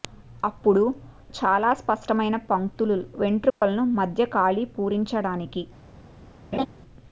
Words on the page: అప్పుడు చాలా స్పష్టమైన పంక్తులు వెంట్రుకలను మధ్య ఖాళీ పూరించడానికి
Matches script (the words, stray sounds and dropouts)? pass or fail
fail